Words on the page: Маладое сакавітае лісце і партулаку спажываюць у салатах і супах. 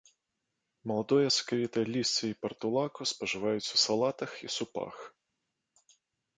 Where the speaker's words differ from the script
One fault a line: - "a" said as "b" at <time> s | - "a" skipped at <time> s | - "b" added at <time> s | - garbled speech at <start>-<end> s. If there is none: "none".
none